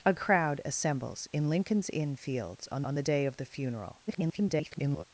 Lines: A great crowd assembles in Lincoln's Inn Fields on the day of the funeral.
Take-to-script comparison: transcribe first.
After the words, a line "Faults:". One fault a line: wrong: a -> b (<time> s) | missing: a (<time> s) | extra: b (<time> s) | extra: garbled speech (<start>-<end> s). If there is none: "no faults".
A crowd assembles in Lincoln's Inn Fields on on the day of the funeral. [garbled]
Faults:
missing: great (0.1 s)
extra: on (2.8 s)
extra: garbled speech (4.1-5.0 s)